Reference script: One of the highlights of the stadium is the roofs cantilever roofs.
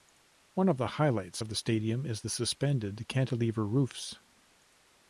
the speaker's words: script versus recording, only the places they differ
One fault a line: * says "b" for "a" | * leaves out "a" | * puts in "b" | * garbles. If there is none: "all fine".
* says "suspended" for "roofs"